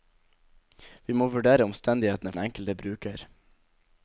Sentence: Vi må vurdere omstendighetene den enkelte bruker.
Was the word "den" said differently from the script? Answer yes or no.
no